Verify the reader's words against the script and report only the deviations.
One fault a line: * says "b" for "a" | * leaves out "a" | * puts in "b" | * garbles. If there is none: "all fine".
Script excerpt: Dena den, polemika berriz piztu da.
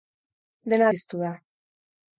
* leaves out "den polemika berriz"